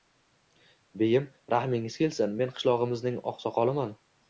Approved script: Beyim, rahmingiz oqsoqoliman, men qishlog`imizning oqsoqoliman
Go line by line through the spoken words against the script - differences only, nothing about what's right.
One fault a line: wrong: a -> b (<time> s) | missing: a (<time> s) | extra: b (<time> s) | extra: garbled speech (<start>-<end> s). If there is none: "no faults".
wrong: oqsoqoliman -> kelsin (2.1 s)